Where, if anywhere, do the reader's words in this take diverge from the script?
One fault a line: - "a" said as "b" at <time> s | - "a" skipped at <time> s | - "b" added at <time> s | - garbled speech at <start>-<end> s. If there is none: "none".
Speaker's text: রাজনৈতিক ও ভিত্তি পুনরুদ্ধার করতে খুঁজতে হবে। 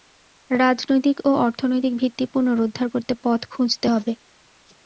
- "অর্থনৈতিক" added at 1.4 s
- "পথ" added at 3.2 s